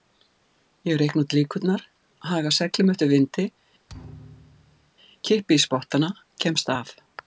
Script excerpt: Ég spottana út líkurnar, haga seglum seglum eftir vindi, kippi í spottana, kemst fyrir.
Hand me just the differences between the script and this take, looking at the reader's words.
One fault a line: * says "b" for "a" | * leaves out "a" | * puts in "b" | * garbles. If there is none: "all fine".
* says "reikna" for "spottana"
* leaves out "seglum"
* says "af" for "fyrir"